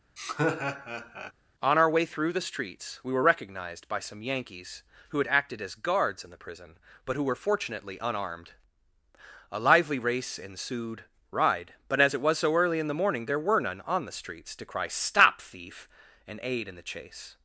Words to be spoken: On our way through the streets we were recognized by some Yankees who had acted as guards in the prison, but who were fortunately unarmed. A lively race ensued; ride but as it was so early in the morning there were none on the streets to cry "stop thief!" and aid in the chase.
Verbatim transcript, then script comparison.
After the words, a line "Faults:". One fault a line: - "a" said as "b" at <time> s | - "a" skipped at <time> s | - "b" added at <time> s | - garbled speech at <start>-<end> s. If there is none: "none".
On our way through the streets we were recognized by some Yankees who had acted as guards in the prison, but who were fortunately unarmed. A lively race ensued; ride but as it was so early in the morning there were none on the streets to cry "stop thief!" and aid in the chase.
Faults:
none